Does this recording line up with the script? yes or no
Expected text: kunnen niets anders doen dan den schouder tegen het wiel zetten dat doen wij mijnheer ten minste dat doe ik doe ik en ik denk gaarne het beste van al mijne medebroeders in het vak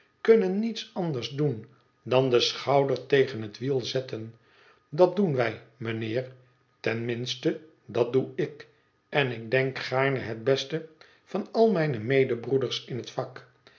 no